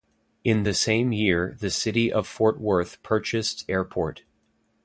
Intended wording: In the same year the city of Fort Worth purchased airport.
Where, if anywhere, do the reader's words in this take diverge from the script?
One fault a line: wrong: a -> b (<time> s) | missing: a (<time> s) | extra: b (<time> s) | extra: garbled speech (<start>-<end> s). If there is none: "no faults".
no faults